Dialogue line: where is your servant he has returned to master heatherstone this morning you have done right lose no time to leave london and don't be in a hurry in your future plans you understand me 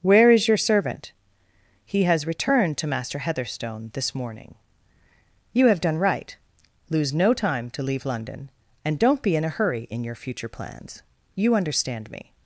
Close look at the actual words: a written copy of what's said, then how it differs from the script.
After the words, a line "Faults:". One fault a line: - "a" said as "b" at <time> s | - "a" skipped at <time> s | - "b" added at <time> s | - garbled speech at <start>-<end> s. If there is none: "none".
where is your servant he has returned to master heatherstone this morning you have done right lose no time to leave london and don't be in a hurry in your future plans you understand me
Faults:
none